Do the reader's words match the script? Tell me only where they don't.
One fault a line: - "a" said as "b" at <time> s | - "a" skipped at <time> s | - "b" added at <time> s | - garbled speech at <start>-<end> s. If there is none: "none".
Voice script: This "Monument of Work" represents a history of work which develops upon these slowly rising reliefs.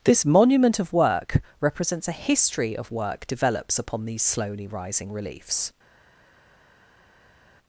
- "which" skipped at 3.3 s